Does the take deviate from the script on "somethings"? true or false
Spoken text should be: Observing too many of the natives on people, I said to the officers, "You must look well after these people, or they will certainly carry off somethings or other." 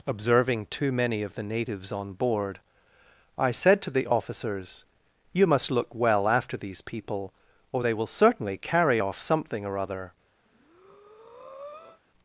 true